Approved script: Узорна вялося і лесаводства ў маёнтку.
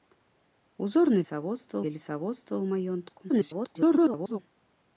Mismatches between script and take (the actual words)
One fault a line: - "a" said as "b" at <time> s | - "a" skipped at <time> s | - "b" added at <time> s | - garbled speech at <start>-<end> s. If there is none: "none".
- "вялося" said as "лесаводства" at 1.2 s
- garbled speech at 3.3-4.4 s